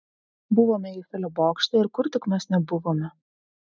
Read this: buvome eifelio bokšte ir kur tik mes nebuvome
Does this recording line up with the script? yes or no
yes